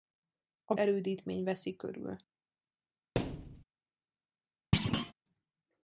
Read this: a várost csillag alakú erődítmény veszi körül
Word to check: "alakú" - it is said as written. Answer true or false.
false